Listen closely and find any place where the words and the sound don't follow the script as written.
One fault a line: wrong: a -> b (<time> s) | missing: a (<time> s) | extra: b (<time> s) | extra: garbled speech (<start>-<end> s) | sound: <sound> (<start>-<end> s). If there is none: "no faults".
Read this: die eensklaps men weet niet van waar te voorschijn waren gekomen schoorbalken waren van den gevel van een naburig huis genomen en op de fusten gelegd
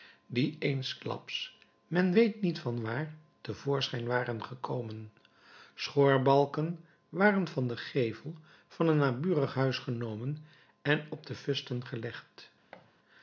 sound: thud (12.7-12.9 s)